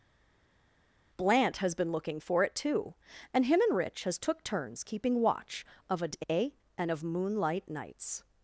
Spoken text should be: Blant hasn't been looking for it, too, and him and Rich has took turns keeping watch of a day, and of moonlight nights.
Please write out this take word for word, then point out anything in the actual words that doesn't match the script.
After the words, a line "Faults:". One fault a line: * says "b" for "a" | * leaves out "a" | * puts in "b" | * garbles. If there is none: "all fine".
Blant has been looking for it, too, and him and Rich has took turns keeping watch of a day, and of moonlight nights.
Faults:
* says "has" for "hasn't"